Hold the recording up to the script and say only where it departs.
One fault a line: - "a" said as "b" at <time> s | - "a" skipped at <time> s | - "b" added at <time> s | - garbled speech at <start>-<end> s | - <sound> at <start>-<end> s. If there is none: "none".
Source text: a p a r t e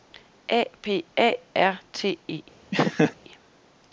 - laugh at 2.7-3.1 s